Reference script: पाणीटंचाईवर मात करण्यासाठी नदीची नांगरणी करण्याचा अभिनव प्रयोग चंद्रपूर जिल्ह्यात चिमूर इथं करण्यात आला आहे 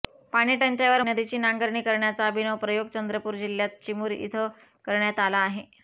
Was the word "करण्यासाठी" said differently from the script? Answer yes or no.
yes